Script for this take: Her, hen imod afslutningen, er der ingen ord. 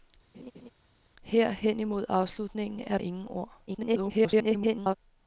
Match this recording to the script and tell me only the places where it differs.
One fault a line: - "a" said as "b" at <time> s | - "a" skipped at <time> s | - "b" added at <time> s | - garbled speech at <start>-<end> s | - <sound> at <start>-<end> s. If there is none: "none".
- laugh at 0.3-0.7 s
- "der" skipped at 3.0 s
- garbled speech at 3.7-5.0 s